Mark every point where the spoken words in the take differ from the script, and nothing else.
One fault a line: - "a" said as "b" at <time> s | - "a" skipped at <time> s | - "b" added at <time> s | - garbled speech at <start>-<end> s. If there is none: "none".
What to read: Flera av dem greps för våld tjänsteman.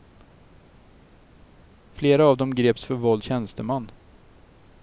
none